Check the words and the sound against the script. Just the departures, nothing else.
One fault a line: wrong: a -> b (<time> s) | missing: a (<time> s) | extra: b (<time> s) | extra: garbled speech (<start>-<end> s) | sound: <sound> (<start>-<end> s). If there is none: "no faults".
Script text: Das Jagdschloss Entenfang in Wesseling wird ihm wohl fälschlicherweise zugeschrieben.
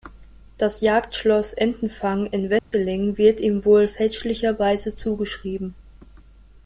sound: dropout (2.6-2.7 s)